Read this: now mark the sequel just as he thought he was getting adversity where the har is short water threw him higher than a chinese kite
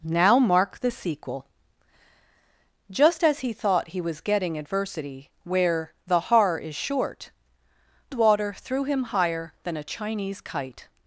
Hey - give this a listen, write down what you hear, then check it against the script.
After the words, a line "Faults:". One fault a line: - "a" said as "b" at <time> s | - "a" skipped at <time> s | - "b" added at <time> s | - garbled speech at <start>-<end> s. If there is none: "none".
now mark the sequel just as he thought he was getting adversity where the har is short water threw him higher than a chinese kite
Faults:
none